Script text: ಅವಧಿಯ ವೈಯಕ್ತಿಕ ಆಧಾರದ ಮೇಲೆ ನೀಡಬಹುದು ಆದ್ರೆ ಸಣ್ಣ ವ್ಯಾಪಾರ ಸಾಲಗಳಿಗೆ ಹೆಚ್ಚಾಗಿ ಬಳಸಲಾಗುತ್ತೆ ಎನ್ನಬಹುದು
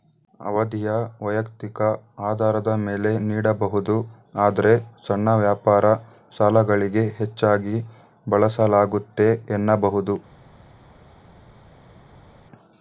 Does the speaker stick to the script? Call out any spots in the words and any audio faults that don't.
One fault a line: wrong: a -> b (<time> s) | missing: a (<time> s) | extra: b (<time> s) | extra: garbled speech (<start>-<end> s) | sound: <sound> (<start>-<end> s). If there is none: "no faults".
no faults